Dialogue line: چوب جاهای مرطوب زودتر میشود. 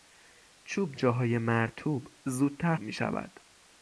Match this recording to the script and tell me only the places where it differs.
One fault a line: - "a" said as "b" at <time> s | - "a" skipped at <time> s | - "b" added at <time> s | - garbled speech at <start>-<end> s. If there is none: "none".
none